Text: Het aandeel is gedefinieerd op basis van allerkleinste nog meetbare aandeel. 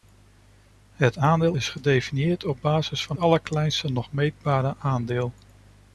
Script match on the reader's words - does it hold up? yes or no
yes